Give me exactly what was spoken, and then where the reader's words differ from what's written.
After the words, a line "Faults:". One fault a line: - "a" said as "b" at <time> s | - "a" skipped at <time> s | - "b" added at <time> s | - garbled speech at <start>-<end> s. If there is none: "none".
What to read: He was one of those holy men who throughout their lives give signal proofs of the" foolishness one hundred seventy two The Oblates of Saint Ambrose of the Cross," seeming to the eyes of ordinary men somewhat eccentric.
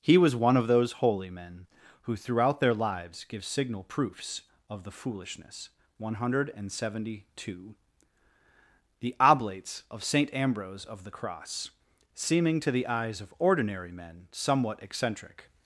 He was one of those holy men who throughout their lives give signal proofs of the" foolishness one hundred seventy two The Oblates of Saint Ambrose of the Cross," seeming to the eyes of ordinary men somewhat eccentric.
Faults:
none